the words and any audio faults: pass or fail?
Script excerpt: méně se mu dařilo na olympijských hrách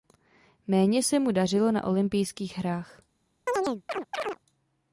fail